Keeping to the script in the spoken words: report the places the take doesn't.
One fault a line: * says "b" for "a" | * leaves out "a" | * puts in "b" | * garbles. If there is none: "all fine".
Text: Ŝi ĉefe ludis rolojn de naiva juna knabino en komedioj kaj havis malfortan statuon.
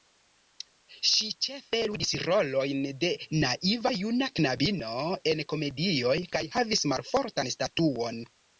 all fine